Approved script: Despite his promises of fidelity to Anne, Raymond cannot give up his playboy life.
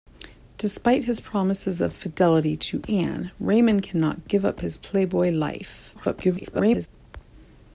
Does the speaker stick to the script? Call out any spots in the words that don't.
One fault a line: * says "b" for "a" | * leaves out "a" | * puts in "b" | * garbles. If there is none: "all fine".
* garbles